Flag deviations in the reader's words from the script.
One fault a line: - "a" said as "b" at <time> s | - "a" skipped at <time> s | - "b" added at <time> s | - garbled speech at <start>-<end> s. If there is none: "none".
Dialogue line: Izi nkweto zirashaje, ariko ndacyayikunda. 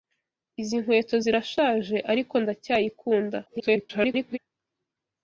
- garbled speech at 3.5-4.4 s